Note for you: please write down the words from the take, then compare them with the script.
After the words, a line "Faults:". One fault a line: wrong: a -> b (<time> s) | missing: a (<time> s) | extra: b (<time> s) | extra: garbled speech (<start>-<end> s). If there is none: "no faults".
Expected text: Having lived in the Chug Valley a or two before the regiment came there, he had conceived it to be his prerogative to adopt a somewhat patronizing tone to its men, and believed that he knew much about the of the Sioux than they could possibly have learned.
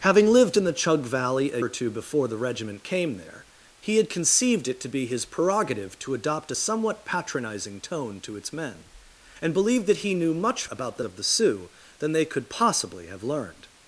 Having lived in the Chug Valley a or two before the regiment came there, he had conceived it to be his prerogative to adopt a somewhat patronizing tone to its men, and believed that he knew much about the of the Sioux than they could possibly have learned.
Faults:
no faults